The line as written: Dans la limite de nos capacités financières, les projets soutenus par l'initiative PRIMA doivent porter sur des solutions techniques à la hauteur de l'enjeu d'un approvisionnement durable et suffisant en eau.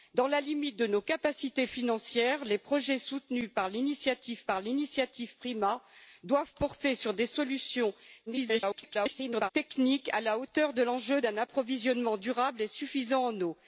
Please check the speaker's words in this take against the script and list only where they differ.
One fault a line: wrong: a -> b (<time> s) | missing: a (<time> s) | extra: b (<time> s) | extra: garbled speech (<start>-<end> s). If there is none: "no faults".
extra: par l'initiative (4.4 s)
extra: garbled speech (8.3-9.5 s)